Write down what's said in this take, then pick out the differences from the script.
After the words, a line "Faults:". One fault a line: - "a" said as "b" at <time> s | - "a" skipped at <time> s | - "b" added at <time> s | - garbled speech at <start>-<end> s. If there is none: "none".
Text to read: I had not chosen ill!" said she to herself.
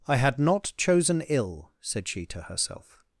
I had not chosen ill!" said she to herself.
Faults:
none